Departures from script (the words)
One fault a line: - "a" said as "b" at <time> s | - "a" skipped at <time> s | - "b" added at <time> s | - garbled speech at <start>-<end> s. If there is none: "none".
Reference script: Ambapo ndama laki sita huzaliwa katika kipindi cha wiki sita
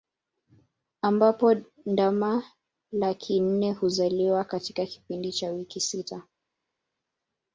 - "sita" said as "nne" at 3.4 s